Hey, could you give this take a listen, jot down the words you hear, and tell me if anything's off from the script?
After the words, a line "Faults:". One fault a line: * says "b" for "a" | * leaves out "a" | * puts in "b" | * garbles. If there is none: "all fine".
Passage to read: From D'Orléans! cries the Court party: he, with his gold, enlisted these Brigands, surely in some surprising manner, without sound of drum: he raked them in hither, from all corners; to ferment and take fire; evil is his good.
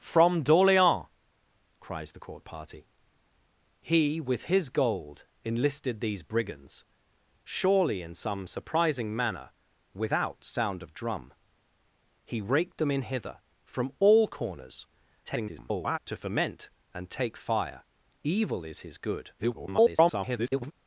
From D'Orléans! cries the Court party: he, with his gold, enlisted these Brigands, surely in some surprising manner, without sound of drum: he raked them in hither, from all corners; [garbled] to ferment and take fire; evil is his good. [garbled]
Faults:
* garbles
* garbles